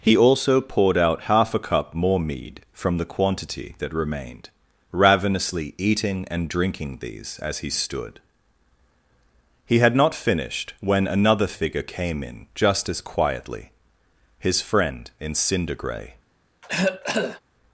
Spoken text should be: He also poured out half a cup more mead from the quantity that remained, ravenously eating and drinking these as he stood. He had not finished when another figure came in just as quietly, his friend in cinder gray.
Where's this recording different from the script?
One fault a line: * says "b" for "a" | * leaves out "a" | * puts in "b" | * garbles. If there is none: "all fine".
all fine